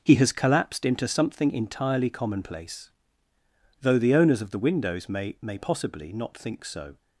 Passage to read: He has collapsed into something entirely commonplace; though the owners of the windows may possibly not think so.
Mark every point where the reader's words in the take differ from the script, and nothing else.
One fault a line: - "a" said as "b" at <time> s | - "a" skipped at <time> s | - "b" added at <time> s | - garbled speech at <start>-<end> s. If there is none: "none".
- "may" added at 5.4 s